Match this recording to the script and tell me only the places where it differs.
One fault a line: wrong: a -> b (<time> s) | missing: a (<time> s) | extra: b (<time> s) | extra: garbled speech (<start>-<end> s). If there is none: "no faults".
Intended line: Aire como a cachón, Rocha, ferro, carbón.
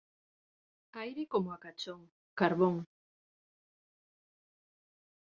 missing: Rocha ferro (2.1 s)